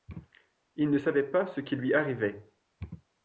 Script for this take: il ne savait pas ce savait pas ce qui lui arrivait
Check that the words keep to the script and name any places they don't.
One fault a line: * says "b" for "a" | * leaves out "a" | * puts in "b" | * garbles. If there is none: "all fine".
* leaves out "savait pas ce"